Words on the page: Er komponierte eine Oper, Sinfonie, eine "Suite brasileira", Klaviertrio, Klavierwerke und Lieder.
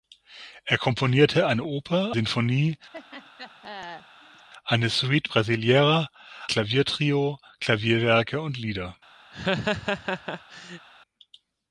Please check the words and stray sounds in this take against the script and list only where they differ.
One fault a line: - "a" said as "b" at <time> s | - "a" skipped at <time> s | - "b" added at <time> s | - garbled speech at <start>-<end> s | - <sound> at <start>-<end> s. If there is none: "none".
- laugh at 2.9-4.5 s
- laugh at 9.3-10.9 s